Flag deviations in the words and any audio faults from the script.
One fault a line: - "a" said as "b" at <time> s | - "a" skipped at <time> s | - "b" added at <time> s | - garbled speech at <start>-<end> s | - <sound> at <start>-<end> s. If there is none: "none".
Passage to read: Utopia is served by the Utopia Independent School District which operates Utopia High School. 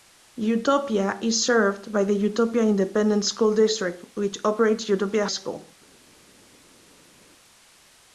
- "High" skipped at 5.3 s